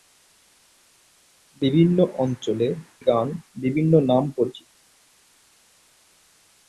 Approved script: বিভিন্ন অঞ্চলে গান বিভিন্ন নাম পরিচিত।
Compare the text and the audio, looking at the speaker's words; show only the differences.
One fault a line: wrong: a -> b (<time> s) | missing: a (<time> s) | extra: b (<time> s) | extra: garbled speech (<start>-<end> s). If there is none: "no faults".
no faults